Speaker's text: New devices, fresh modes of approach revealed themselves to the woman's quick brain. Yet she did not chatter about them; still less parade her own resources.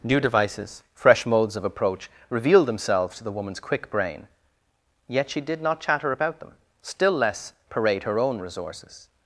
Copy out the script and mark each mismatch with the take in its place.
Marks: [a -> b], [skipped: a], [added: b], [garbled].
New devices, fresh modes of approach revealed themselves to the woman's quick brain. Yet she did not chatter about them; still less parade her own resources.